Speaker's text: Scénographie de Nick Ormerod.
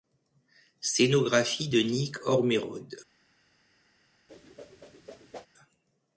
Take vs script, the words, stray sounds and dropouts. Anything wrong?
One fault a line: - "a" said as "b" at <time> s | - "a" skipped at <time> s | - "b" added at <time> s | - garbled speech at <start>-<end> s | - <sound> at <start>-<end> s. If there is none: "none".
- whoosh at 4.3-5.5 s